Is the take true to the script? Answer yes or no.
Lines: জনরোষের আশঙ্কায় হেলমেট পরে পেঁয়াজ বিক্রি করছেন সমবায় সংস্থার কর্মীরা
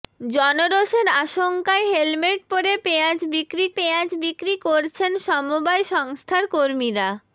no